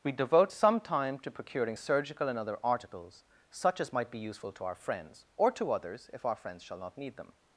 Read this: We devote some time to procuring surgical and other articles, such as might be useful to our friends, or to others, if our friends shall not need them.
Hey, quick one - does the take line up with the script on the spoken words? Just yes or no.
yes